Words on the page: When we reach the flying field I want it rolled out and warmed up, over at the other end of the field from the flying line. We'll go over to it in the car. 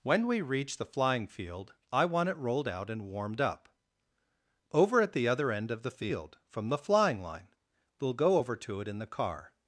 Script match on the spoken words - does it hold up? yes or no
yes